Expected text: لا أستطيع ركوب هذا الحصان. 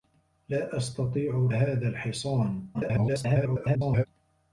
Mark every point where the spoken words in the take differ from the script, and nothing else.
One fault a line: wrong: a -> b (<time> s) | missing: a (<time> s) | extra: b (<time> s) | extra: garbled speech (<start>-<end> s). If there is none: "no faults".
missing: ركوب (1.5 s)
extra: garbled speech (2.7-4.1 s)